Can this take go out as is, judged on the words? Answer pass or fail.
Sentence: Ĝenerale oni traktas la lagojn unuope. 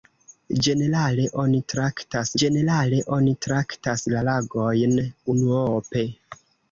fail